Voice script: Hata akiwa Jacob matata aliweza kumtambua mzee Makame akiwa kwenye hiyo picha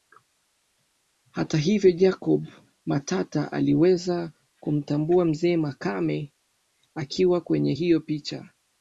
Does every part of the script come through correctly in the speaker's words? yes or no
no